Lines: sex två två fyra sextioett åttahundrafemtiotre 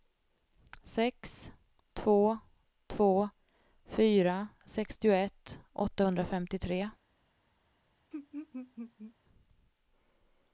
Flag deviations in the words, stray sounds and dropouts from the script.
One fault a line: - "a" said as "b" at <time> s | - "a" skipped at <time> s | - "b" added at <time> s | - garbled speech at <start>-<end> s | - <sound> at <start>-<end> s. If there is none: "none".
- laugh at 8.1-9.1 s